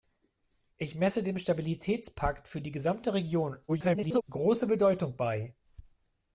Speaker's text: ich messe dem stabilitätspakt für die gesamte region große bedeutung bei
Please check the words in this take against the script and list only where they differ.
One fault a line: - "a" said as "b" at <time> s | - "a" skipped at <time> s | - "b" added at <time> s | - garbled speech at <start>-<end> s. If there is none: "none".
- garbled speech at 3.7-4.2 s